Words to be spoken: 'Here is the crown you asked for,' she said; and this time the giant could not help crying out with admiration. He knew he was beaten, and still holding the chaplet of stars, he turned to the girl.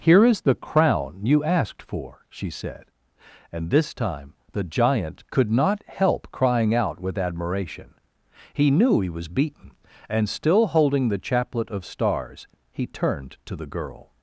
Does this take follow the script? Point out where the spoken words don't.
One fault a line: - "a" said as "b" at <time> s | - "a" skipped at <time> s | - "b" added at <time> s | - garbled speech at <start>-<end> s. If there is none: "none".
none